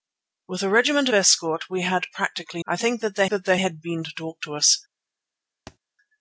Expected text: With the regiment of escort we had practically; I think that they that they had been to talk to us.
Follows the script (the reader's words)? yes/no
yes